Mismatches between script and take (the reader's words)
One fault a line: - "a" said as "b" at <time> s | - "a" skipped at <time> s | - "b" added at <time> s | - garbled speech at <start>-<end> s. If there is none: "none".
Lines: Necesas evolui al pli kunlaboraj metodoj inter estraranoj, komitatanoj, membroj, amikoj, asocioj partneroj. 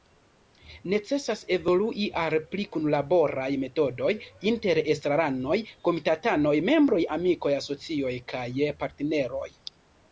- "kaj" added at 8.3 s